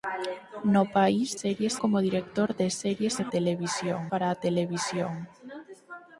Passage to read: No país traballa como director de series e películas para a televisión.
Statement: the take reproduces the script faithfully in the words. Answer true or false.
false